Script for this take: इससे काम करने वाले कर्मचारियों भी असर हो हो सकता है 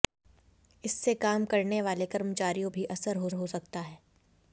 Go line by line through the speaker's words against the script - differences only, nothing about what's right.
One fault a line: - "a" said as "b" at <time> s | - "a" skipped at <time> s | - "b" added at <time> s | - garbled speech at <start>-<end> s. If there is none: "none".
none